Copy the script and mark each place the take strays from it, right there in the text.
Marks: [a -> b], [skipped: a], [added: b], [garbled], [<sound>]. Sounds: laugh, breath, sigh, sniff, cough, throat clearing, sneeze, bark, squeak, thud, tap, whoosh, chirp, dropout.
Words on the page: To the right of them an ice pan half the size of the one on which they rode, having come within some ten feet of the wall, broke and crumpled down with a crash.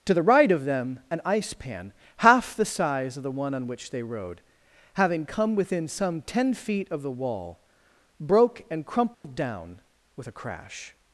To the right of them an ice pan half the size of the one on which they rode, having come within some ten feet of the wall, broke and crumpled [dropout] down with a crash.